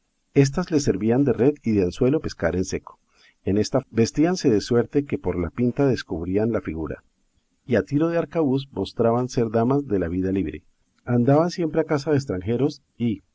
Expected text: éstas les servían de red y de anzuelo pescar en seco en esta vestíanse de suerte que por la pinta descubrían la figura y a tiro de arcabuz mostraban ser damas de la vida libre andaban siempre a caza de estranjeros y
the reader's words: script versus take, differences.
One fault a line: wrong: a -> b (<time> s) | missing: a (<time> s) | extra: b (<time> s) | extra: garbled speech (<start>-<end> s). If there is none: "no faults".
no faults